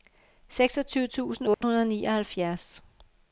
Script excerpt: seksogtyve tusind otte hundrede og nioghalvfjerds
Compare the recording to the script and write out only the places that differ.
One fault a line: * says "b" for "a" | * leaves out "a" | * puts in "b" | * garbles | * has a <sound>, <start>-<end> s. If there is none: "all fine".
* has a dropout, 1.5-1.6 s